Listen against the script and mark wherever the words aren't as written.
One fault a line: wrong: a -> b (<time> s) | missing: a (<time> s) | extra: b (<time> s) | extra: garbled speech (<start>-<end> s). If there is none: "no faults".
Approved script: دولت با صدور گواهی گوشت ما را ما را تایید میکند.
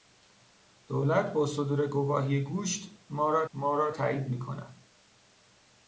no faults